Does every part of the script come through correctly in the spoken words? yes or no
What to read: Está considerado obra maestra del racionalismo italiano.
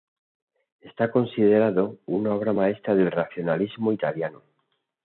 no